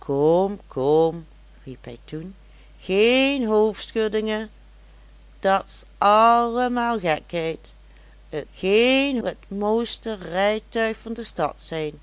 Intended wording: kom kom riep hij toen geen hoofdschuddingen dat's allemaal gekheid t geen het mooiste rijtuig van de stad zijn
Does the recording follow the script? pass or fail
pass